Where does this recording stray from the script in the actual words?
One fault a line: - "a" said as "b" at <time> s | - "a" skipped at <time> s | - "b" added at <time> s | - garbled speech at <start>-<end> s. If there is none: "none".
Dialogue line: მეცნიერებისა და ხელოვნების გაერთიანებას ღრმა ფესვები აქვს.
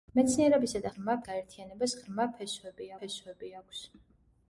- "ხელოვნების" said as "ღრმა" at 0.9 s
- "ფესვები" added at 3.0 s